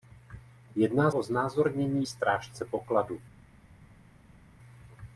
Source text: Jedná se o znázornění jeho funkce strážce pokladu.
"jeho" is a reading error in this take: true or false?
true